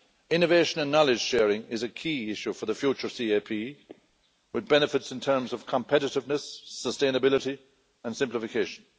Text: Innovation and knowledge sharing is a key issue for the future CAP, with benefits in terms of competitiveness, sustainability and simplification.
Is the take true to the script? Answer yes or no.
yes